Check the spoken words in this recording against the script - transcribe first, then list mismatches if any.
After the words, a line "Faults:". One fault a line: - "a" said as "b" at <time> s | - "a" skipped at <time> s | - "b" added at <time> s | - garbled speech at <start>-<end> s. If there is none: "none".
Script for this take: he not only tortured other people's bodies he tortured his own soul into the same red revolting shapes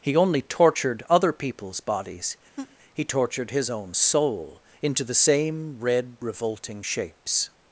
he only tortured other people's bodies he tortured his own soul into the same red revolting shapes
Faults:
- "not" skipped at 0.1 s